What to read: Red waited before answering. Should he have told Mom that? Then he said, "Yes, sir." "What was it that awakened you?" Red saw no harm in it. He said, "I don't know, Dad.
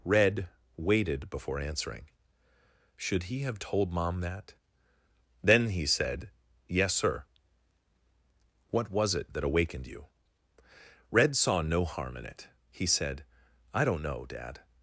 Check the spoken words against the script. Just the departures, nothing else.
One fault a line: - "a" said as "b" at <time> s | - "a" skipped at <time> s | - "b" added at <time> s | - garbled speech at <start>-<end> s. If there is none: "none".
none